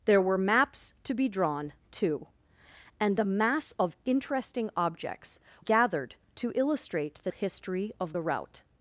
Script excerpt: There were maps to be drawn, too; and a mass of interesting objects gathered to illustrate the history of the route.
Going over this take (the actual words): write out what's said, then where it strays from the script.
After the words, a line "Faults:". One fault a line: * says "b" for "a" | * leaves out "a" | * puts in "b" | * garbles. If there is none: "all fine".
There were maps to be drawn, too; and a mass of interesting objects gathered to illustrate the history of the route.
Faults:
all fine